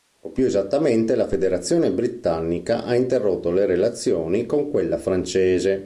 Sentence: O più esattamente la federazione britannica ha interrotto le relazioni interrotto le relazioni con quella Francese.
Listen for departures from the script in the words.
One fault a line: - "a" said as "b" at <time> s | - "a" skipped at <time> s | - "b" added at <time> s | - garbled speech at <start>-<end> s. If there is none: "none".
- "interrotto le relazioni" skipped at 4.5 s